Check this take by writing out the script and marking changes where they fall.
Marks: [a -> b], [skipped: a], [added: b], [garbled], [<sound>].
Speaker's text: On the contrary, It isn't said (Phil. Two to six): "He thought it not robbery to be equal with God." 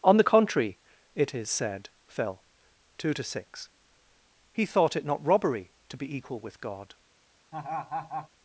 On the contrary, It [isn't -> is] said (Phil. Two to six): "He thought it not robbery to be equal with God." [laugh]